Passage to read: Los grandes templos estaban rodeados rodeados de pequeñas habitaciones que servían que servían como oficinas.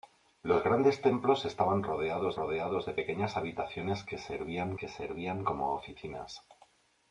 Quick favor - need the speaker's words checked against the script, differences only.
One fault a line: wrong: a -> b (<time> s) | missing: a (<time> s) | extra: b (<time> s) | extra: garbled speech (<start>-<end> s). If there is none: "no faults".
no faults